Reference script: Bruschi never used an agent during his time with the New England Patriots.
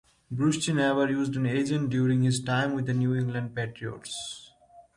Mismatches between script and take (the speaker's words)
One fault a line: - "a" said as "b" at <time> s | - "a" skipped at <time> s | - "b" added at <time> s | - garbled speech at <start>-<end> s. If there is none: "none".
none